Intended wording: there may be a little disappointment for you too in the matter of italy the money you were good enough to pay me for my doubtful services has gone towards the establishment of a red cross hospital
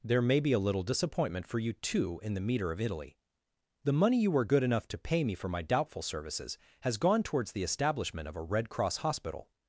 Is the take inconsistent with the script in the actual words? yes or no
yes